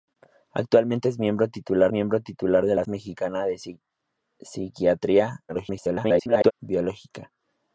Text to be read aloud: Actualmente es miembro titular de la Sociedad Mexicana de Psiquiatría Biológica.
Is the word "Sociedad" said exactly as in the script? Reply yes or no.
no